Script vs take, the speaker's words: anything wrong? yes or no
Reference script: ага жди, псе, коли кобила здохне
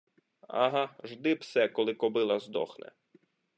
no